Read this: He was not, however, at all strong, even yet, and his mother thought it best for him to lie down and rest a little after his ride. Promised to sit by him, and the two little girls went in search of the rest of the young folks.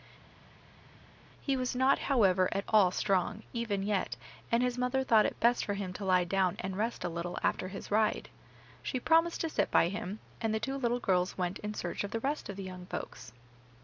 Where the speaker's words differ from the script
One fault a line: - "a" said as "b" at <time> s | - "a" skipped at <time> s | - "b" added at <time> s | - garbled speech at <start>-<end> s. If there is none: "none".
- "She" added at 8.8 s